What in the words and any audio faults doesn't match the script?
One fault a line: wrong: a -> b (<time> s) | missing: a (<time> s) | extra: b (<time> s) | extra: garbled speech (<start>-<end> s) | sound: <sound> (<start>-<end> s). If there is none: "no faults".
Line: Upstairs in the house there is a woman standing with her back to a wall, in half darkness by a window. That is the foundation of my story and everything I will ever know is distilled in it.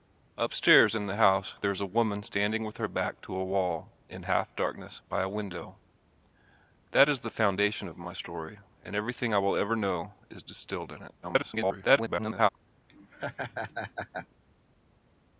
extra: garbled speech (11.2-12.5 s)
sound: laugh (12.9-14.3 s)